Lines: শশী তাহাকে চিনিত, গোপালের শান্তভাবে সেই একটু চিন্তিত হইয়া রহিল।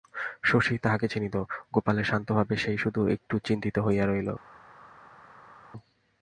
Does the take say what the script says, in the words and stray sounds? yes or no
no